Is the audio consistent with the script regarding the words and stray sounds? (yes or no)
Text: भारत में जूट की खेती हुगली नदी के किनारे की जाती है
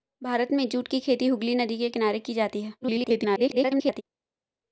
no